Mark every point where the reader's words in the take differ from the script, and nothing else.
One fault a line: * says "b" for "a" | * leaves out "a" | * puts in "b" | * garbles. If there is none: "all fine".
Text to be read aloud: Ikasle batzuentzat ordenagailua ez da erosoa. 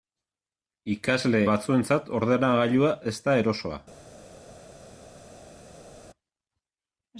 all fine